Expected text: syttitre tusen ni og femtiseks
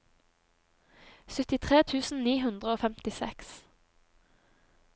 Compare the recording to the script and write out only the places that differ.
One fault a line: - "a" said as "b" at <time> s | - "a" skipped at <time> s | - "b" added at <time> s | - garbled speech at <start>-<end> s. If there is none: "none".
- "hundre" added at 2.4 s